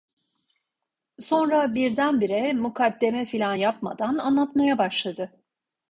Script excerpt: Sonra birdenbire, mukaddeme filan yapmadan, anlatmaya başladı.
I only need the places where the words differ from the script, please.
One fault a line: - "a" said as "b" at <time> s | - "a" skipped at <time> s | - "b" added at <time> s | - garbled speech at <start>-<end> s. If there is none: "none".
none